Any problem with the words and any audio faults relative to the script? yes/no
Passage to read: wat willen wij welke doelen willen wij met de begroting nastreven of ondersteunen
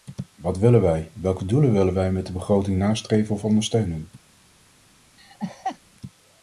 yes